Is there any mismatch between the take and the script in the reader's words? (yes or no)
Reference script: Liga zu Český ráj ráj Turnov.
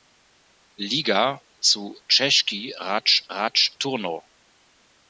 no